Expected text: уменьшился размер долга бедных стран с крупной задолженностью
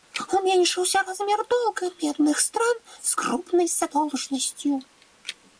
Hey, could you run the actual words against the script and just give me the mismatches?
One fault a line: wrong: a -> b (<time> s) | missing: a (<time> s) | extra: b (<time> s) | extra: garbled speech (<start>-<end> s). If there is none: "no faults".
no faults